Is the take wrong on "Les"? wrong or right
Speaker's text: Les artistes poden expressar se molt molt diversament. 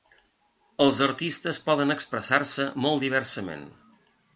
wrong